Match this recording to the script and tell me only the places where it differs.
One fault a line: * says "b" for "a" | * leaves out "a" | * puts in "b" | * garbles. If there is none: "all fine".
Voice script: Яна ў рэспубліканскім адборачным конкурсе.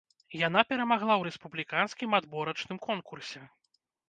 * puts in "перамагла"